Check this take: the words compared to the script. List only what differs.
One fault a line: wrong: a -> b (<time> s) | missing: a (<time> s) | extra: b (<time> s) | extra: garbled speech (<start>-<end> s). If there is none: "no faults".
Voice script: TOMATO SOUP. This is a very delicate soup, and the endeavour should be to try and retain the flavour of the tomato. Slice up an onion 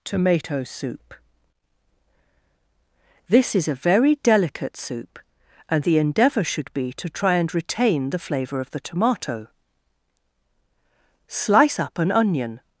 no faults